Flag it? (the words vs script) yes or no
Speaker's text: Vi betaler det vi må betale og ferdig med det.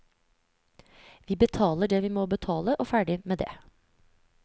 no